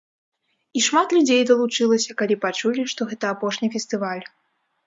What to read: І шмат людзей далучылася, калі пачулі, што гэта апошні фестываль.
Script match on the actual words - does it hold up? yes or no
yes